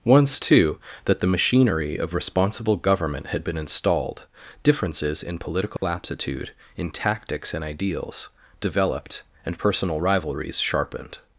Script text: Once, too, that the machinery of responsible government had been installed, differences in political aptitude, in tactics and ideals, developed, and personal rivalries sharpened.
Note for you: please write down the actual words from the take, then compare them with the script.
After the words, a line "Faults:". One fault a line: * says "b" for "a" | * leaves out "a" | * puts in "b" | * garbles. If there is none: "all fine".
Once, too, that the machinery of responsible government had been installed, differences in political aptitude, in tactics and ideals, developed, and personal rivalries sharpened.
Faults:
all fine